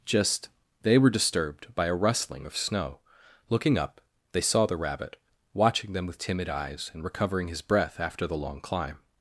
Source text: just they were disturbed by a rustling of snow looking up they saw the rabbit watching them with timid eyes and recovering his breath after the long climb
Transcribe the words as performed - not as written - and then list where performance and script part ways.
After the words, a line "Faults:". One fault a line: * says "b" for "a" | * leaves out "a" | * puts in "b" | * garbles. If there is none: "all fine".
just they were disturbed by a rustling of snow looking up they saw the rabbit watching them with timid eyes and recovering his breath after the long climb
Faults:
all fine